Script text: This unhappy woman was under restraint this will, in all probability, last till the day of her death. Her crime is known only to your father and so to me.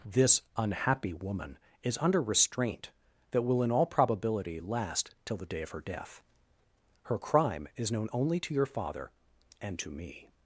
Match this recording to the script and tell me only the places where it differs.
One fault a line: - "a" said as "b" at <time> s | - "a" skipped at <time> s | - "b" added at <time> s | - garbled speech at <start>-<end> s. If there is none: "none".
- "was" said as "is" at 1.8 s
- "this" said as "that" at 3.3 s
- "so" skipped at 9.8 s